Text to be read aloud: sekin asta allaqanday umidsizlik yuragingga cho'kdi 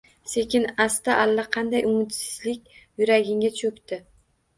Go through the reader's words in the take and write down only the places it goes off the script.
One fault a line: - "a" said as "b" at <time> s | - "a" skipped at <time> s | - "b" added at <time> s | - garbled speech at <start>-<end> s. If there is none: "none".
none